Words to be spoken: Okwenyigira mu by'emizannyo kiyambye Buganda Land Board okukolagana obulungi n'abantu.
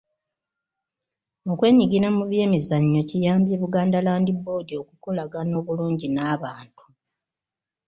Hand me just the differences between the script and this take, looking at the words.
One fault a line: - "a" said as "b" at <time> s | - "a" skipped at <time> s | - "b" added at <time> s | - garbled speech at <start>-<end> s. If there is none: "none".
none